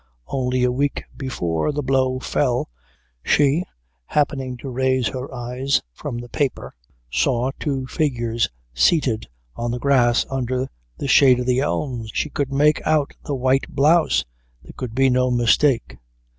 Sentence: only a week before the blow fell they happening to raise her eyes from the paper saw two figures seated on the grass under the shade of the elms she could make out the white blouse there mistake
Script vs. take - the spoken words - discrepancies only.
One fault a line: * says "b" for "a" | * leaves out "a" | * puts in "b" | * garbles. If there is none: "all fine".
* says "she" for "they"
* puts in "could be no"